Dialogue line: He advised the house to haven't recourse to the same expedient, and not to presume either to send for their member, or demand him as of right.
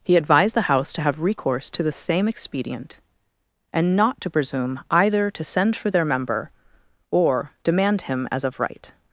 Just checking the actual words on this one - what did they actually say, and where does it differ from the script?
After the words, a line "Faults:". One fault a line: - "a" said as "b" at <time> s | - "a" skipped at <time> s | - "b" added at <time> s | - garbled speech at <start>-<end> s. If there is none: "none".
He advised the house to have recourse to the same expedient, and not to presume either to send for their member, or demand him as of right.
Faults:
- "haven't" said as "have" at 1.0 s